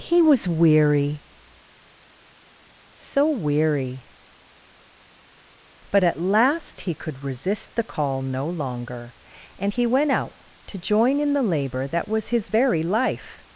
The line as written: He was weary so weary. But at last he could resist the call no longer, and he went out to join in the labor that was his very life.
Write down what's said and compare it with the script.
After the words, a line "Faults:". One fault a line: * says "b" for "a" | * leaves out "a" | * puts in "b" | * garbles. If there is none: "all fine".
He was weary so weary. But at last he could resist the call no longer, and he went out to join in the labor that was his very life.
Faults:
all fine